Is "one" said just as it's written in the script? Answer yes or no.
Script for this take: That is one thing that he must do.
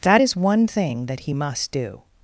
yes